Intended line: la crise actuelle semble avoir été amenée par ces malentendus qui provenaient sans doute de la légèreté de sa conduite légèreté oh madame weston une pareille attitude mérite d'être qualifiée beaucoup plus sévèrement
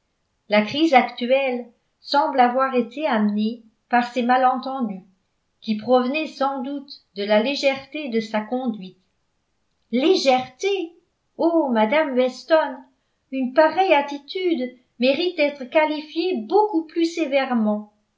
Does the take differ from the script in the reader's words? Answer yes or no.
no